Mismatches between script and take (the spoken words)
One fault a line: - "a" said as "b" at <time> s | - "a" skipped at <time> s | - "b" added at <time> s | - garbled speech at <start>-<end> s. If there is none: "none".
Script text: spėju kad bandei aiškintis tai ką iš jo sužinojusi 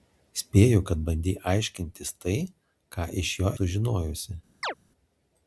none